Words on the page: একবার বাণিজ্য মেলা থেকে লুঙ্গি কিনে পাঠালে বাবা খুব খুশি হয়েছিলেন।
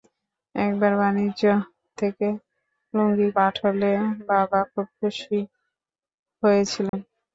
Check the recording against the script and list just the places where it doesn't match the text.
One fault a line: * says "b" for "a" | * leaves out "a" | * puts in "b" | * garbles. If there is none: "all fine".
* leaves out "মেলা"
* leaves out "কিনে"